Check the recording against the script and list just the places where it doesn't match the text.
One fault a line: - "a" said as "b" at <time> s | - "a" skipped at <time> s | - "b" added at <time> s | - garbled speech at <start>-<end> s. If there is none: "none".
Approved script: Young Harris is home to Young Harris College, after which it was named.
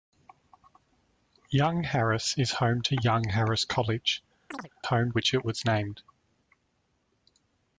- "after" said as "home" at 4.8 s